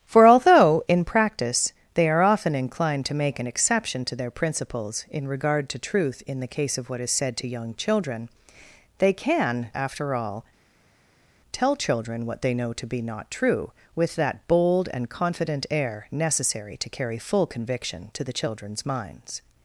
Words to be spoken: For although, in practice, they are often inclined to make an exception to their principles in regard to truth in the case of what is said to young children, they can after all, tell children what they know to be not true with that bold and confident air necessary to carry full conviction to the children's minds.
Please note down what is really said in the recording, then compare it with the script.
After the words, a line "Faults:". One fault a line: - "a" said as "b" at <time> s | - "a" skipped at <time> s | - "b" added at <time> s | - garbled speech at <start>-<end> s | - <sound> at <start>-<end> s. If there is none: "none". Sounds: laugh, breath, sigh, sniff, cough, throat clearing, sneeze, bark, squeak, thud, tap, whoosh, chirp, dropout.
For although, in practice, they are often inclined to make an exception to their principles in regard to truth in the case of what is said to young children, they can after all, tell children what they know to be not true with that bold and confident air necessary to carry full conviction to the children's minds.
Faults:
none